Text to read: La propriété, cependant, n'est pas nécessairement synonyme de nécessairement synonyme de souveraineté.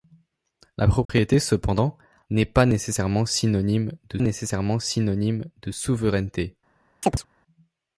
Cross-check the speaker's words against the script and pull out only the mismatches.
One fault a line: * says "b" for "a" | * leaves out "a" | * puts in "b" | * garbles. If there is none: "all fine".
all fine